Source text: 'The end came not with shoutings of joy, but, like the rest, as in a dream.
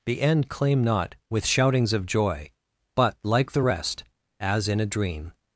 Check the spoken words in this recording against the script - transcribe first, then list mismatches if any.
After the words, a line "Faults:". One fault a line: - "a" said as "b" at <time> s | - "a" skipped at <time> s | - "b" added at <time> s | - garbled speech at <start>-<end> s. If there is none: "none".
'The end claim not with shoutings of joy, but, like the rest, as in a dream.
Faults:
- "came" said as "claim" at 0.5 s